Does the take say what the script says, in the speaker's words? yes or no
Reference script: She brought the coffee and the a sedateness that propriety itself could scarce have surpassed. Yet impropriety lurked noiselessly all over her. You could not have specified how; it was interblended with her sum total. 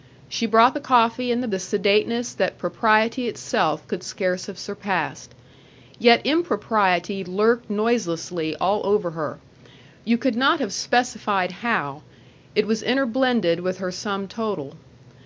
yes